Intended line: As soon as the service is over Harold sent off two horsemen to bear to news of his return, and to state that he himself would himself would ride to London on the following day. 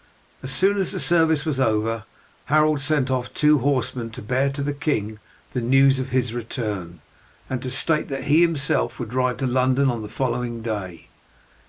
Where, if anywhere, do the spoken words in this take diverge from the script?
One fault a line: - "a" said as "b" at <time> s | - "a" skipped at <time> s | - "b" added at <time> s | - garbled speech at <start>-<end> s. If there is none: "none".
- "is" said as "was" at 1.4 s
- "the king the" added at 4.6 s
- "himself would" skipped at 9.1 s